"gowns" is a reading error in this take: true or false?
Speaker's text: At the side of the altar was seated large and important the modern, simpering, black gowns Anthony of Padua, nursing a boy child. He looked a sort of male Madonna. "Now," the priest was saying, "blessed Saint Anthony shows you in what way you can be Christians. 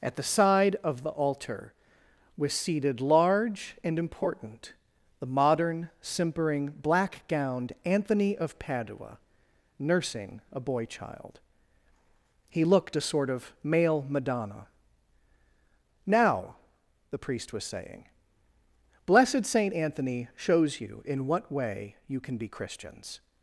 true